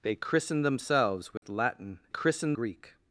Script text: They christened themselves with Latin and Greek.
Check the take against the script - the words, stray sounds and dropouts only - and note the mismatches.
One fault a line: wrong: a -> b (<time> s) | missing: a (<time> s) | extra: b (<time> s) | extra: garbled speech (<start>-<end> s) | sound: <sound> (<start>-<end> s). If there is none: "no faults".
sound: dropout (1.4-1.4 s)
wrong: and -> christened (2.1 s)